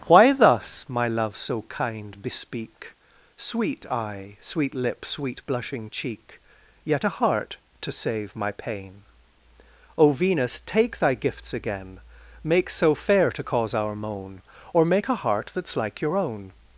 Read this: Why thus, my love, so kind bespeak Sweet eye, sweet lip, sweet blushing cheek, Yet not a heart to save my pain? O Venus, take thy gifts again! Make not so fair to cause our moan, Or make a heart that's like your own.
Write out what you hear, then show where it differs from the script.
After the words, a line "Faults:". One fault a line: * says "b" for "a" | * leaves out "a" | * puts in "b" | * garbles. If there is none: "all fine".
Why thus, my love, so kind bespeak Sweet eye, sweet lip, sweet blushing cheek, Yet a heart to save my pain? O Venus, take thy gifts again! Make so fair to cause our moan, Or make a heart that's like your own.
Faults:
* leaves out "not"
* leaves out "not"